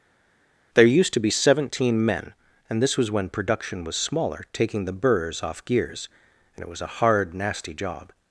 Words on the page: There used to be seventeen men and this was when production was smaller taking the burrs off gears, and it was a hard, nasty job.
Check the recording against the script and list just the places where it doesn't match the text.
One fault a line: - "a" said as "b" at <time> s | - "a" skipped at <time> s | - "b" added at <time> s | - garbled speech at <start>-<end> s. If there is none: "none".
none